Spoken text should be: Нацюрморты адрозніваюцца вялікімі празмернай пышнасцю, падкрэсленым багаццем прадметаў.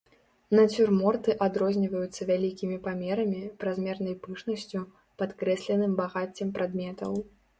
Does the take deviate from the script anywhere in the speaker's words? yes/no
yes